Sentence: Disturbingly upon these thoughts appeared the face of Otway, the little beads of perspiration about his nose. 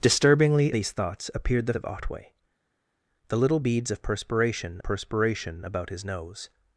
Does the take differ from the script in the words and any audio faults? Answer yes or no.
yes